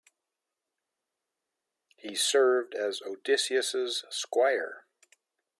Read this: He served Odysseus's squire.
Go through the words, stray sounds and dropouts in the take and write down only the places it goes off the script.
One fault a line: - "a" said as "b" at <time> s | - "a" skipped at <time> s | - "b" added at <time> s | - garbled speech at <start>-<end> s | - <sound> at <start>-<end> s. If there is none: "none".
- "as" added at 2.7 s